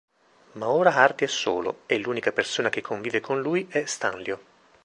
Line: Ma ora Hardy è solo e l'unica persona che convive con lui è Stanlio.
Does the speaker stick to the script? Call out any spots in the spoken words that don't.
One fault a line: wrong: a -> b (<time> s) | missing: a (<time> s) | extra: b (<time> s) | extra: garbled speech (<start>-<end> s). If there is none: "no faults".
no faults